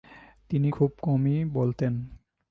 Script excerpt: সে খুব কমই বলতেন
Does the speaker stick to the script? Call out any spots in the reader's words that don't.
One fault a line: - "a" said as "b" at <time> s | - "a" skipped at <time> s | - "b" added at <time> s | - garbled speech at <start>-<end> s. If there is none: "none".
- "সে" said as "তিনি" at 0.5 s